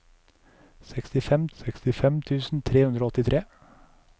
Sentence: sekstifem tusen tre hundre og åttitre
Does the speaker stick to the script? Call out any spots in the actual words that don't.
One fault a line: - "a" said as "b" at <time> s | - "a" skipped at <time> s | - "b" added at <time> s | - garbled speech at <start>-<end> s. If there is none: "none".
- "sekstifem" added at 1.6 s